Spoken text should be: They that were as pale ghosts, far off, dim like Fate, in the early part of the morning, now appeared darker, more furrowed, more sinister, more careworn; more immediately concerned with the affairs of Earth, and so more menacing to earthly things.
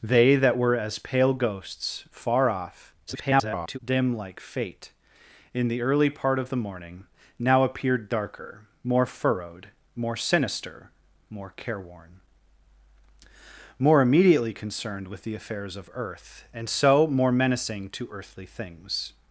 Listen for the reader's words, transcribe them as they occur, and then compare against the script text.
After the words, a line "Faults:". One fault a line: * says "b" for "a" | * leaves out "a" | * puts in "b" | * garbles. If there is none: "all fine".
They that were as pale ghosts, far off, [garbled] dim like Fate, in the early part of the morning, now appeared darker, more furrowed, more sinister, more careworn; more immediately concerned with the affairs of Earth, and so more menacing to earthly things.
Faults:
* garbles